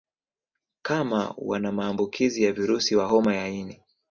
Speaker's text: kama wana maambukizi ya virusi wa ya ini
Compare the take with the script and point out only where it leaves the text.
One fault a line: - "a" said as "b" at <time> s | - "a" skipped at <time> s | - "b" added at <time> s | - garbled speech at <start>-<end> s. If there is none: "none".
- "homa" added at 3.1 s